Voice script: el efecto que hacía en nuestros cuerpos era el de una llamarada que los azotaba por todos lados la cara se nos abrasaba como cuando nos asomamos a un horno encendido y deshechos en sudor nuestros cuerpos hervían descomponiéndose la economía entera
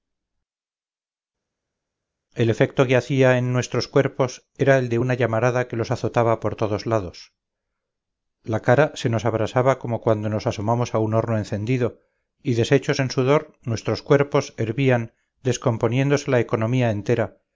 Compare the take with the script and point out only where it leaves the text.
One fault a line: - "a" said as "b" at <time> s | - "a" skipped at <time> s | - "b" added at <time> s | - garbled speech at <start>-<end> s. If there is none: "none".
none